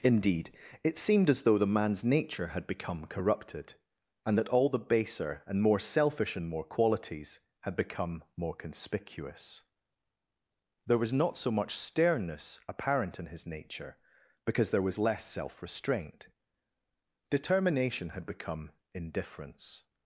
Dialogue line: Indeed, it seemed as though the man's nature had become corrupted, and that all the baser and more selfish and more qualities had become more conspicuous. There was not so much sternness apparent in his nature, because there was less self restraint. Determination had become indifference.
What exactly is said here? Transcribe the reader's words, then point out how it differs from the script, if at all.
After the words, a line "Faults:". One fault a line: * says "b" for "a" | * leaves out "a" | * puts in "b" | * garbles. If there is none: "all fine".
Indeed, it seemed as though the man's nature had become corrupted, and that all the baser and more selfish and more qualities had become more conspicuous. There was not so much sternness apparent in his nature, because there was less self restraint. Determination had become indifference.
Faults:
all fine